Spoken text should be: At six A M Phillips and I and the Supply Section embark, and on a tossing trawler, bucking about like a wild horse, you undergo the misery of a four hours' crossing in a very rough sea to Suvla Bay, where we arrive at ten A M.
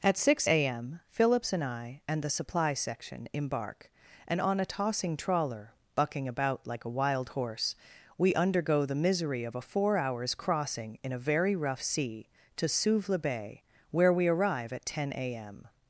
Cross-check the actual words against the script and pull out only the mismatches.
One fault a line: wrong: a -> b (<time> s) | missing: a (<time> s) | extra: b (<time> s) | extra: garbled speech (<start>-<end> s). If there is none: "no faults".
wrong: you -> we (8.2 s)